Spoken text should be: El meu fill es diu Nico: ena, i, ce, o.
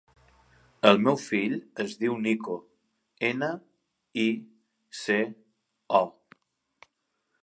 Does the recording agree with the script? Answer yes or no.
yes